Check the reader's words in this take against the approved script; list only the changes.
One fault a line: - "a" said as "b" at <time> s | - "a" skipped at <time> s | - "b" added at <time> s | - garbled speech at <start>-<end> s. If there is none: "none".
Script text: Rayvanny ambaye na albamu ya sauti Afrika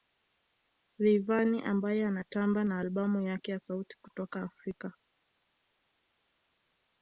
- "anatamba" added at 2.0 s
- "yake" added at 3.2 s
- "kutoka" added at 4.0 s